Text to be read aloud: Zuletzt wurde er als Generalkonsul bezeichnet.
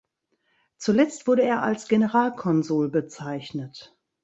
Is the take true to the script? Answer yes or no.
yes